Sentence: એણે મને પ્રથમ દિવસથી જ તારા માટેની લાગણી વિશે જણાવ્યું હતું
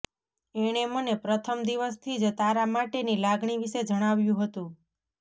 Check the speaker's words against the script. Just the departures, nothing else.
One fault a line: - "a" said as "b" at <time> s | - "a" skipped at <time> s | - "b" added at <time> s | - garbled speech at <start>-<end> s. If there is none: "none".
none